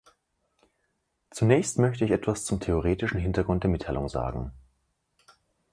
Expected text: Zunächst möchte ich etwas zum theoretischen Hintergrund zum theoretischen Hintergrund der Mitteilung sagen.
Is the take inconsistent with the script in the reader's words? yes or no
yes